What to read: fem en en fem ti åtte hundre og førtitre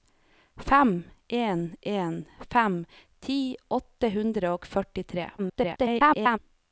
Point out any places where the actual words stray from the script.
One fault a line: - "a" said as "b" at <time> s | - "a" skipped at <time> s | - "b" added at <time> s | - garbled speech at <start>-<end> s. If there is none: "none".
- garbled speech at 5.4-6.4 s